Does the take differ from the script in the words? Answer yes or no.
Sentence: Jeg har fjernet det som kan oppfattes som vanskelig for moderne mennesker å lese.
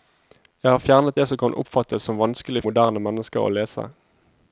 yes